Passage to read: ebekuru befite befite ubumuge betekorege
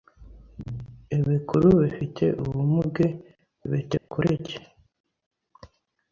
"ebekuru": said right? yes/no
yes